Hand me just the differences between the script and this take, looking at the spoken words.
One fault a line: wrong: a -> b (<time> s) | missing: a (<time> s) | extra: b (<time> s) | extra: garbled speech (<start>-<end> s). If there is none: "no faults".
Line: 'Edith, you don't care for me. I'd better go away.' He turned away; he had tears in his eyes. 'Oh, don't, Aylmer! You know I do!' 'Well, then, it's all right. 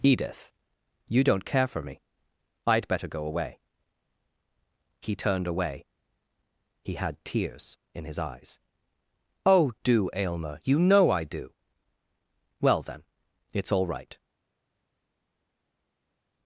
wrong: don't -> do (9.8 s)